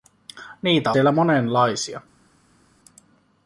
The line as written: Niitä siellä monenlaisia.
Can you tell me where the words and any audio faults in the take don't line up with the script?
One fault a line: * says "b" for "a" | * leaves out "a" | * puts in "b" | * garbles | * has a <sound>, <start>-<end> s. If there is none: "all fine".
all fine